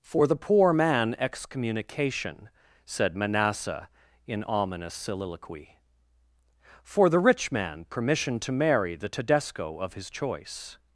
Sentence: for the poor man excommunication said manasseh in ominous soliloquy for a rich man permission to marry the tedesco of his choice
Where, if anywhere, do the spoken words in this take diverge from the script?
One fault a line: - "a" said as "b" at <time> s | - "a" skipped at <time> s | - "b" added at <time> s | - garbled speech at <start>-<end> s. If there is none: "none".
- "a" said as "the" at 7.1 s